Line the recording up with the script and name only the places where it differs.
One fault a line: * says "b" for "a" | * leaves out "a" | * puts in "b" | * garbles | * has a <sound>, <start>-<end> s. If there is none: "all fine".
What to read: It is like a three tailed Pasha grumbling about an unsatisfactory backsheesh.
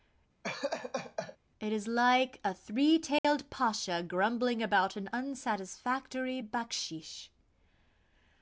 * has a laugh, 0.4-1.4 s
* has a dropout, 3.2-3.2 s